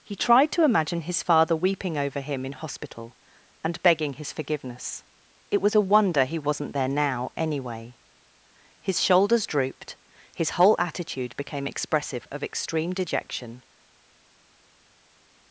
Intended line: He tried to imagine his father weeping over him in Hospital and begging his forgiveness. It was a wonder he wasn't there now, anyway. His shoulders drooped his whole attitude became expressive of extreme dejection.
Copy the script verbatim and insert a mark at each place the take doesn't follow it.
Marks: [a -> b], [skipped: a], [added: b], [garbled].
He tried to imagine his father weeping over him in Hospital and begging his forgiveness. It was a wonder he wasn't there now, anyway. His shoulders drooped his whole attitude became expressive of extreme dejection.